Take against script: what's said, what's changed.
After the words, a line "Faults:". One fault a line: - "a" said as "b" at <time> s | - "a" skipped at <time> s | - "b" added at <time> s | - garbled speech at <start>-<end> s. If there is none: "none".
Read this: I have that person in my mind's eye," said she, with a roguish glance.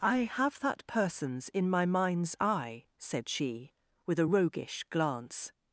I have that persons in my mind's eye," said she, with a roguish glance.
Faults:
- "person" said as "persons" at 0.9 s